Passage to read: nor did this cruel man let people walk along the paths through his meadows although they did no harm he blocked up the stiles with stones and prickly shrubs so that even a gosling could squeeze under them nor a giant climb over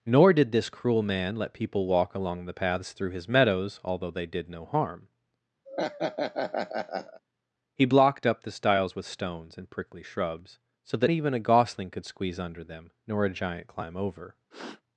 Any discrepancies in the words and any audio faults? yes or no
yes